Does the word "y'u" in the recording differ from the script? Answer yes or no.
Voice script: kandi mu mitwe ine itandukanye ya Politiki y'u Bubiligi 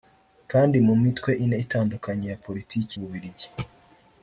yes